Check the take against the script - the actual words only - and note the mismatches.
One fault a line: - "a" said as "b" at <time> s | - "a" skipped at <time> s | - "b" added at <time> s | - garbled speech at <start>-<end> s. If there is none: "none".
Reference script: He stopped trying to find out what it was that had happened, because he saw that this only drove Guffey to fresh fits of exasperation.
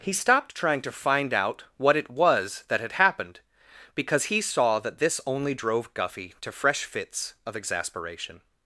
none